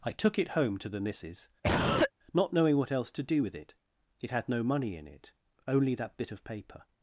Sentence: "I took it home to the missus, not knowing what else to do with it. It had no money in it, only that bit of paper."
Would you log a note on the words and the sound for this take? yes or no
yes